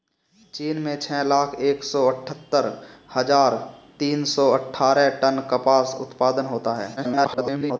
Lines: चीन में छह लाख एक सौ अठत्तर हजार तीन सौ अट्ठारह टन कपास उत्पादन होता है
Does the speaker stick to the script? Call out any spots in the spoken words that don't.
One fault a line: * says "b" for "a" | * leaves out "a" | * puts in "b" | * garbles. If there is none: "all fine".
* garbles